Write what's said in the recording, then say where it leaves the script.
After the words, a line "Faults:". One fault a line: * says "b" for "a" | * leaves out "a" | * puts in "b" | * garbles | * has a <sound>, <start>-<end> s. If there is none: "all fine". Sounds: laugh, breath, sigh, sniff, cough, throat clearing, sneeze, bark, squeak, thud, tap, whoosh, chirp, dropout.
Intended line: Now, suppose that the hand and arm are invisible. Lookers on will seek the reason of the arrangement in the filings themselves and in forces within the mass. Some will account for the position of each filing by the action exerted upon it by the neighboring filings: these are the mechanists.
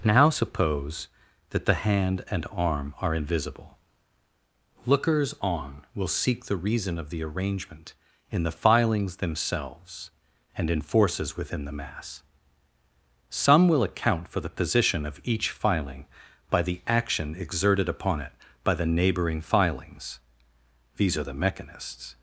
Now, suppose that the hand and arm are invisible. Lookers on will seek the reason of the arrangement in the filings themselves and in forces within the mass. Some will account for the position of each filing by the action exerted upon it by the neighboring filings: these are the mechanists.
Faults:
all fine